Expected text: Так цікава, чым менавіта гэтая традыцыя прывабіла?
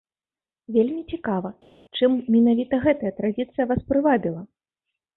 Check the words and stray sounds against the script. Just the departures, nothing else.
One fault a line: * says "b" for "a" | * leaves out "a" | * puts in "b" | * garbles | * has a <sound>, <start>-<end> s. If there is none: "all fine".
* says "Вельмі" for "Так"
* puts in "вас"